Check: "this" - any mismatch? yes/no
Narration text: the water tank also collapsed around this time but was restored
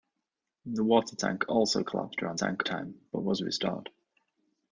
yes